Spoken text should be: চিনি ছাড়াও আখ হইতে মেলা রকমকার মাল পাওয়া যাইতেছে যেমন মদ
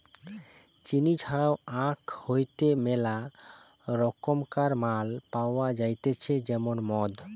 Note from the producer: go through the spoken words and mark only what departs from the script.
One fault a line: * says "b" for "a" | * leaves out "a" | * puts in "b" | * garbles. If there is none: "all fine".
all fine